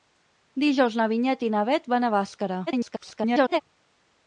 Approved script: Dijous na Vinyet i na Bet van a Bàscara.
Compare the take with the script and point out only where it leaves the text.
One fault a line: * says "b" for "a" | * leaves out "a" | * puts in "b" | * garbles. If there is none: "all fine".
* garbles